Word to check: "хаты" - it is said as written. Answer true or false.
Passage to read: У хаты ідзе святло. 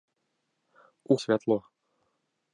false